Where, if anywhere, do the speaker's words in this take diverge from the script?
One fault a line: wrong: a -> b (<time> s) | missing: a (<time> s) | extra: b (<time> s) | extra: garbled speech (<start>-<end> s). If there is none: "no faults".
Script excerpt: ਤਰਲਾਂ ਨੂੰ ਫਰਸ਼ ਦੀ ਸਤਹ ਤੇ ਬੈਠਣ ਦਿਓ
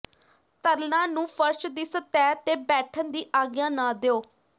extra: ਦੀ ਆਗਿਆ ਨਾ (3.1 s)